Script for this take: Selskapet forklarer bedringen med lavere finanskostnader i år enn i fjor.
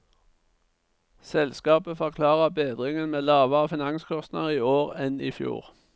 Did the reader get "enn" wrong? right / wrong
right